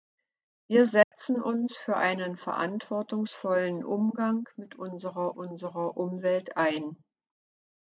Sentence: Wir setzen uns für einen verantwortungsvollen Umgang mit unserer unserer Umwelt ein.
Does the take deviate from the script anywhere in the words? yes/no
no